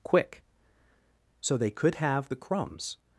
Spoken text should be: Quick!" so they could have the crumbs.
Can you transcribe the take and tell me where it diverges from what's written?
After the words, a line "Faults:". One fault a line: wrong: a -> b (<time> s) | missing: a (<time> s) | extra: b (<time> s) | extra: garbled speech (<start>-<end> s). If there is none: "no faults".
Quick!" so they could have the crumbs.
Faults:
no faults